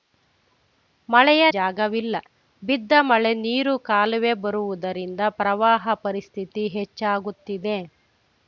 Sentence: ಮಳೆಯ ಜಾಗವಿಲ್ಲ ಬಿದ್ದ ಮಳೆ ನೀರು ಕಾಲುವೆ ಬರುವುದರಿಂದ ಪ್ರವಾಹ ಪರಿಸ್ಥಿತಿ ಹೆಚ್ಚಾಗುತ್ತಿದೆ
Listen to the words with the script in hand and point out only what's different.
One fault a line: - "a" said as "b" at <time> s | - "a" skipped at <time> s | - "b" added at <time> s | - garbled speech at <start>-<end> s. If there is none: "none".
none